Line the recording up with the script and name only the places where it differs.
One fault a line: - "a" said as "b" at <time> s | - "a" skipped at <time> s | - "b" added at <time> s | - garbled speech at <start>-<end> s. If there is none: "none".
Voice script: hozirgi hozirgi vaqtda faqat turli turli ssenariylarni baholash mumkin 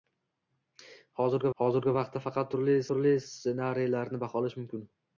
none